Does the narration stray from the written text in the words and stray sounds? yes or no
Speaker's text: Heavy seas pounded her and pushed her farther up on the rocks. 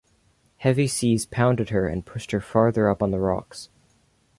no